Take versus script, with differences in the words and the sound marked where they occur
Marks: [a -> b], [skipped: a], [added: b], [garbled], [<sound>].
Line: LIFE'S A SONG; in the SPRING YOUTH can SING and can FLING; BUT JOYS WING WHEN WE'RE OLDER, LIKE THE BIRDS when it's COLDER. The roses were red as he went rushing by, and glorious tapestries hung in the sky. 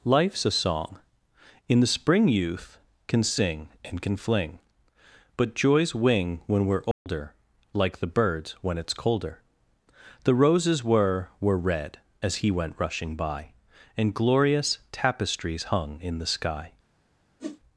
LIFE'S A SONG; in the SPRING YOUTH can SING and can FLING; BUT JOYS WING WHEN WE'RE OLDER, [dropout] LIKE THE BIRDS when it's COLDER. The roses were [added: were] red as he went rushing by, and glorious tapestries hung in the sky. [whoosh]